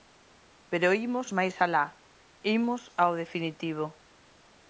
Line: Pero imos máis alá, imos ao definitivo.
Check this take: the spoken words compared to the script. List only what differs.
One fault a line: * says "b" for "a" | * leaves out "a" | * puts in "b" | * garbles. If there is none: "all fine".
all fine